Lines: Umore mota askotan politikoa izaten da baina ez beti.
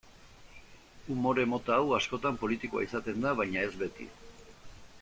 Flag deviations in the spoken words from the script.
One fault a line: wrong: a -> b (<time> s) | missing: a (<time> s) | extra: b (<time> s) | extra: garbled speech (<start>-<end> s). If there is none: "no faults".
extra: hau (1.8 s)